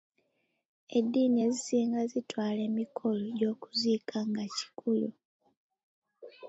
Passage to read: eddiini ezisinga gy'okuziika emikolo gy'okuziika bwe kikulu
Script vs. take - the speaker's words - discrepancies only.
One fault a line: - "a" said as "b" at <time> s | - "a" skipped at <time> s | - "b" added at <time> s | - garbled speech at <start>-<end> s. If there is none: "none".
- "gy'okuziika" said as "zitwala" at 2.1 s
- "bwe" said as "nga" at 4.3 s